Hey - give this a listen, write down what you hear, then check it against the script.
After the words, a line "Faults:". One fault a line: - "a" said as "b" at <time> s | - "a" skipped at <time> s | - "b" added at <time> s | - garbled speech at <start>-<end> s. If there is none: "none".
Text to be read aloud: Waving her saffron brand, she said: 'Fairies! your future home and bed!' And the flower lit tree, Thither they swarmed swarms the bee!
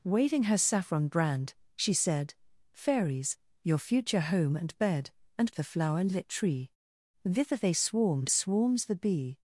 Waving her saffron brand, she said: 'Fairies! your future home and bed!' And the flower lit tree, Thither they swarmed swarms the bee!
Faults:
none